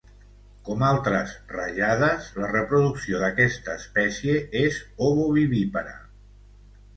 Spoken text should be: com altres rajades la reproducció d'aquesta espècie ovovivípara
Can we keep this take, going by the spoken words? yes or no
no